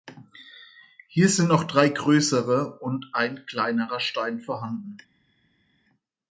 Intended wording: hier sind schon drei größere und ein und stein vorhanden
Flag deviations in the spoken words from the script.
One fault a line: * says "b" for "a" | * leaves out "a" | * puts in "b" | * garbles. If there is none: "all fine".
* says "noch" for "schon"
* says "kleinerer" for "und"